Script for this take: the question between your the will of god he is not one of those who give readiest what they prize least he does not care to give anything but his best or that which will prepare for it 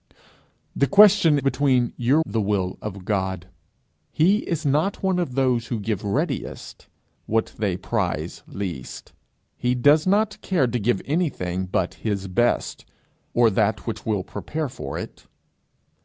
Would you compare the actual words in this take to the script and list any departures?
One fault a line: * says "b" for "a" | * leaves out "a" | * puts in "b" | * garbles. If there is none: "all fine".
all fine